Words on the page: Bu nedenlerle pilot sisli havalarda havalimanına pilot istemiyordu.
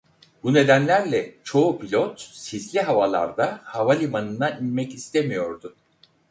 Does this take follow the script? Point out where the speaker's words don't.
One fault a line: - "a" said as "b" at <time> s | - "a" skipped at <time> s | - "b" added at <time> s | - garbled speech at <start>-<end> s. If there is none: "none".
- "çoğu" added at 1.4 s
- "pilot" said as "inmek" at 4.5 s